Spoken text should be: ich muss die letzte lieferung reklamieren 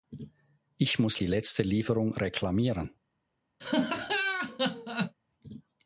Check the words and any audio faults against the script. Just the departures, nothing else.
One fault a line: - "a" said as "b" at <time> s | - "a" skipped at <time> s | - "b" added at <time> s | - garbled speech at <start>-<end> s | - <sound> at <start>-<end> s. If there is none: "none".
- laugh at 3.6-5.1 s